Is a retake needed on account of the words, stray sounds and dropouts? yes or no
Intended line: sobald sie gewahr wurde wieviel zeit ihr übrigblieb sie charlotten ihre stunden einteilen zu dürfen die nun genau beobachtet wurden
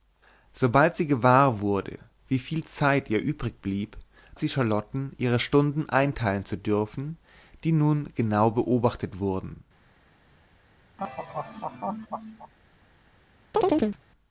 yes